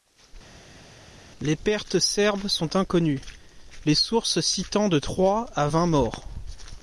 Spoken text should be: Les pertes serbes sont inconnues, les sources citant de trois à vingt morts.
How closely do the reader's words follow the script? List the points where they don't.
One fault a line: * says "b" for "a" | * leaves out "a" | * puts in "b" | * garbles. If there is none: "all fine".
all fine